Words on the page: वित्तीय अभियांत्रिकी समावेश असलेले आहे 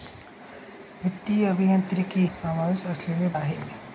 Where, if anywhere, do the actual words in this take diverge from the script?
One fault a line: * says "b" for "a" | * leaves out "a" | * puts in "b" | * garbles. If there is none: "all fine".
all fine